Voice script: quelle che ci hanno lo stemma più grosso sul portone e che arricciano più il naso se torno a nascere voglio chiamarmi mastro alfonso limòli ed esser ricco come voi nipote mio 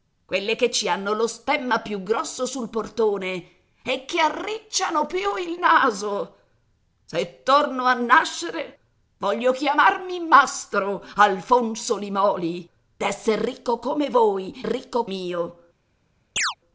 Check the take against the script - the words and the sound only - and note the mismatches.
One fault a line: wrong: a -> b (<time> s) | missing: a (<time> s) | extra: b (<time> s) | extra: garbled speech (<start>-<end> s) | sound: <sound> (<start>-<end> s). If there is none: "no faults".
missing: ed (12.7 s)
wrong: nipote -> ricco (14.6 s)
sound: chirp (16.4-16.5 s)